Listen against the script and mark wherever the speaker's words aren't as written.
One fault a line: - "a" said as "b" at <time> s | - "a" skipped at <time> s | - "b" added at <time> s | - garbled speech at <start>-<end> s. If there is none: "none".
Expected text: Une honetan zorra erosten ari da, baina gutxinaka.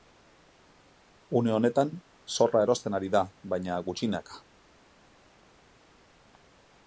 none